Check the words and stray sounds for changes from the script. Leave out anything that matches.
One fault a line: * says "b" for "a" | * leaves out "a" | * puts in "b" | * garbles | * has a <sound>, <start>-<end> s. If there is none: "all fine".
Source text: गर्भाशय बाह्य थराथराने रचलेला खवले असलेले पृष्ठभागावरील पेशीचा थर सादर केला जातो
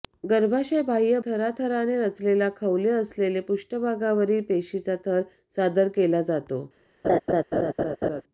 * has a laugh, 7.0-8.2 s